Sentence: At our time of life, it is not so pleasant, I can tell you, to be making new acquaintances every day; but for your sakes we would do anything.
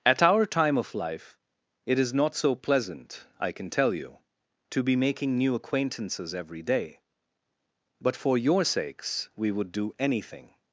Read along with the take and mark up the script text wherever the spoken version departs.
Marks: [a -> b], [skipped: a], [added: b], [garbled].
At our time of life, it is not so pleasant, I can tell you, to be making new acquaintances every day; but for your sakes we would do anything.